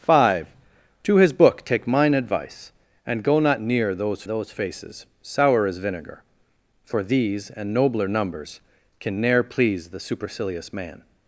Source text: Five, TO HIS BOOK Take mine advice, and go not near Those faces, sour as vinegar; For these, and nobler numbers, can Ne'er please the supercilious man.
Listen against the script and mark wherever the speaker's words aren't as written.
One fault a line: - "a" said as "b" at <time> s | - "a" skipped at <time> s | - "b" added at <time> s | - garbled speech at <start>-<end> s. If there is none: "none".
- "Those" added at 4.2 s